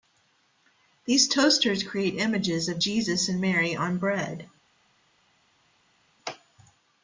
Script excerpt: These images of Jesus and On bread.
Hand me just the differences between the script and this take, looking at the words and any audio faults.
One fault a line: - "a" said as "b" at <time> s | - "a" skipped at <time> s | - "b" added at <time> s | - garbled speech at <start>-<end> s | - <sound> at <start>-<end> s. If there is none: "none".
- "toasters create" added at 1.3 s
- "Mary" added at 3.4 s